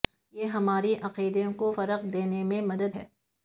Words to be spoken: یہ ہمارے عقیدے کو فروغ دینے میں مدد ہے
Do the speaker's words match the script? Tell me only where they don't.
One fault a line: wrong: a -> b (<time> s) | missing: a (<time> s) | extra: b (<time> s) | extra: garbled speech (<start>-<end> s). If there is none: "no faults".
no faults